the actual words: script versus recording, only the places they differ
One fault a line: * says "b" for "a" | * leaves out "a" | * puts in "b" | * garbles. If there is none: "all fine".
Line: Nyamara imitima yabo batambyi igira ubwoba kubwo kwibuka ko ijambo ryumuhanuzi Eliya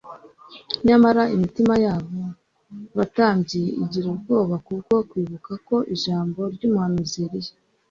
all fine